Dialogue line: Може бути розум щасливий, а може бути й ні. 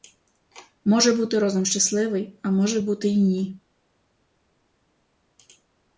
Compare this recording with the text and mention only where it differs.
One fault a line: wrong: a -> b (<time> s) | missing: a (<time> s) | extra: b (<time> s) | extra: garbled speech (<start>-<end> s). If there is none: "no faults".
no faults